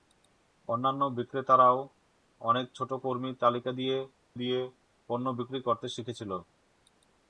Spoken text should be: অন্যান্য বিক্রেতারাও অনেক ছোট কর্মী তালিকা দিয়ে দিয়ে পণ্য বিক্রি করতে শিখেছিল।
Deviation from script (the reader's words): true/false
false